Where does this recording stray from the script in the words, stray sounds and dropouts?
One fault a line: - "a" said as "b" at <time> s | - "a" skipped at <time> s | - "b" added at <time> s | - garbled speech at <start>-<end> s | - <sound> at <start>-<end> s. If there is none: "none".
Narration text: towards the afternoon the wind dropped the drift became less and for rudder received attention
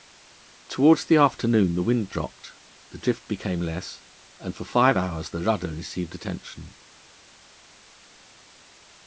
- "five hours the" added at 4.7 s